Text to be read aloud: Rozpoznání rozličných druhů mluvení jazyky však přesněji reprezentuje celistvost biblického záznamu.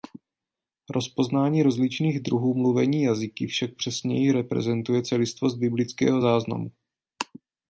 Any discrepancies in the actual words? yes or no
no